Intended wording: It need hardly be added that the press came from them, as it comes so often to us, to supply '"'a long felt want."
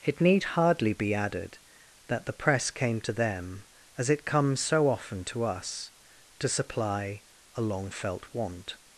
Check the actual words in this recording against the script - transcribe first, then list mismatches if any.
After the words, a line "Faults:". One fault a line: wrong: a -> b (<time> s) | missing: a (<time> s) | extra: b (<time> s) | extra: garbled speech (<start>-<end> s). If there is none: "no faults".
It need hardly be added that the press came to them, as it comes so often to us, to supply '"'a long felt want."
Faults:
wrong: from -> to (3.0 s)